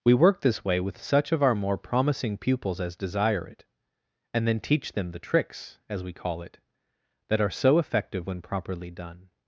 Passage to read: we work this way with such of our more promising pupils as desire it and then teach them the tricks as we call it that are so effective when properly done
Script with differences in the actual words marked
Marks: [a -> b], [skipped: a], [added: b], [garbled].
we work this way with such of our more promising pupils as desire it and then teach them the tricks as we call it that are so effective when properly done